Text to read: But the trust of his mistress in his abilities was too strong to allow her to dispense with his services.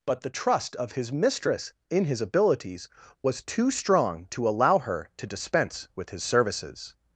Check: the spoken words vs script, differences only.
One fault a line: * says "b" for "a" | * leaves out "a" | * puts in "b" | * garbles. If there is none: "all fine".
all fine